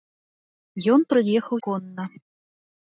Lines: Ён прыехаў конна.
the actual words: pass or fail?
pass